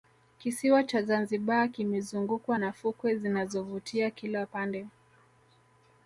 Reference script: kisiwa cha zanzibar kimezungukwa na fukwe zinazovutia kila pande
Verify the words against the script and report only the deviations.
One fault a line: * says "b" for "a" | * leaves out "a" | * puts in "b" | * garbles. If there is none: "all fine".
all fine